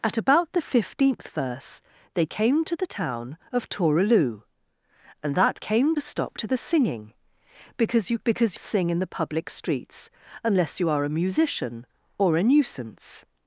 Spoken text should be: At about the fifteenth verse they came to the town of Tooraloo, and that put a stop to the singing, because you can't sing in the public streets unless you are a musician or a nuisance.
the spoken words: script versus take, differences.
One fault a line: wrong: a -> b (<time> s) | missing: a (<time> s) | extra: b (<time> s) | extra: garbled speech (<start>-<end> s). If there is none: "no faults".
wrong: put -> came (5.6 s)
wrong: can't -> because (8.2 s)